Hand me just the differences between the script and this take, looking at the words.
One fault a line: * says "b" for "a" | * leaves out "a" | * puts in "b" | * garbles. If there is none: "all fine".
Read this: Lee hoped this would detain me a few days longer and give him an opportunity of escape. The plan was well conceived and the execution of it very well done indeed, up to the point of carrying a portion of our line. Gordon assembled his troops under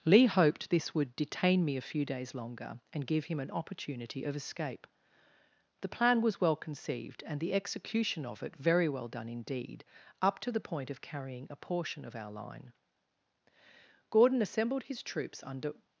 all fine